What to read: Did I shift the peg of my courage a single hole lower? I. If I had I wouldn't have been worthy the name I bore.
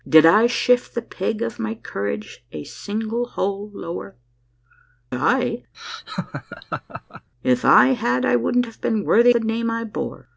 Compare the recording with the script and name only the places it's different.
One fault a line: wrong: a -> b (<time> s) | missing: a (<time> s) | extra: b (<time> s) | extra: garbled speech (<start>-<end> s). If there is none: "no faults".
no faults